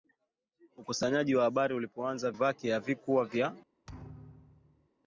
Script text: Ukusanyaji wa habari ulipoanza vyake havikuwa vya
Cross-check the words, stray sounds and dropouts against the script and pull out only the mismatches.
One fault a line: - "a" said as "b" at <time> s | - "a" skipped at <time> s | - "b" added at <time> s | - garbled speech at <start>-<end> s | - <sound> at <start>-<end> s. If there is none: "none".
- thud at 3.9-4.9 s